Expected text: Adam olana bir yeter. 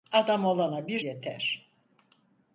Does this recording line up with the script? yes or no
yes